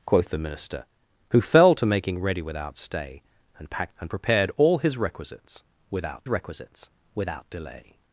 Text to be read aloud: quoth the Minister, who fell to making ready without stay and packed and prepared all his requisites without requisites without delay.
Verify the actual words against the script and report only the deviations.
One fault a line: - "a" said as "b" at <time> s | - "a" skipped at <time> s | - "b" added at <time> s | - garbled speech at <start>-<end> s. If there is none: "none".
none